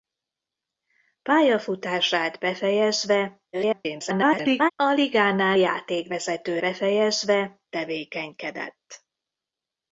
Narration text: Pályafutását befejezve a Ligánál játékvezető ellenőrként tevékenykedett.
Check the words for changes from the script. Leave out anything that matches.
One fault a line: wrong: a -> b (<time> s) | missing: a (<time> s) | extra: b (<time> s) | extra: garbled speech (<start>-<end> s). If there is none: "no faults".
extra: garbled speech (3.5-4.7 s)
wrong: ellenőrként -> befejezve (6.6 s)